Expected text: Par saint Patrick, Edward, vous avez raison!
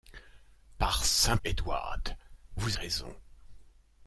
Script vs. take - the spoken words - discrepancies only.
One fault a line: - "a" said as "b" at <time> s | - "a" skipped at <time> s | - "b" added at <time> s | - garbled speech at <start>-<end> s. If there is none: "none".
- "Patrick" skipped at 1.4 s
- "avez" skipped at 2.8 s